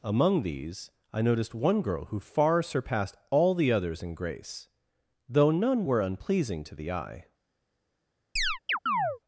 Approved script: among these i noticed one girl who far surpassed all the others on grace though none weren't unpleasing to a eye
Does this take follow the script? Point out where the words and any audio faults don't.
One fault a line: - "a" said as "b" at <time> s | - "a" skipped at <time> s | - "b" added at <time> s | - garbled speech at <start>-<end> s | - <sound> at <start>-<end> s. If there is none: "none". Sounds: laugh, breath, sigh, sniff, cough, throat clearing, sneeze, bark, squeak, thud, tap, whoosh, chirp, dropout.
- "on" said as "in" at 4.0 s
- "weren't" said as "were" at 5.8 s
- "a" said as "the" at 6.8 s
- chirp at 8.4-9.2 s